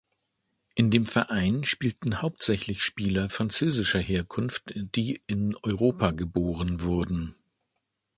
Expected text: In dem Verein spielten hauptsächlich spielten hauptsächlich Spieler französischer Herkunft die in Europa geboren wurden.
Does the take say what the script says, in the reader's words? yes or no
no